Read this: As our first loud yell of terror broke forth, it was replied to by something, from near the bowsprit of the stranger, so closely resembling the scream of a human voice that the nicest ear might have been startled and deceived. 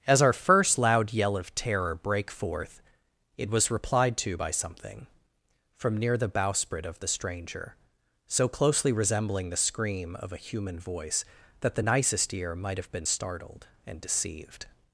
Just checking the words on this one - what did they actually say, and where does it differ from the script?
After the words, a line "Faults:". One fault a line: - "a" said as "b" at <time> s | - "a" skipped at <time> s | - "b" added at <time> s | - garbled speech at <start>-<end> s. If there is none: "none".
As our first loud yell of terror brake forth, it was replied to by something, from near the bowsprit of the stranger, so closely resembling the scream of a human voice that the nicest ear might have been startled and deceived.
Faults:
- "broke" said as "brake" at 1.9 s